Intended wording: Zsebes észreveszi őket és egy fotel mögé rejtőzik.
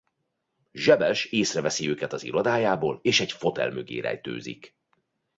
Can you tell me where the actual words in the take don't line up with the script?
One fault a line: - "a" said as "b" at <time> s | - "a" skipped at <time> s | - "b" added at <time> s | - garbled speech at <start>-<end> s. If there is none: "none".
- "az irodájából" added at 2.1 s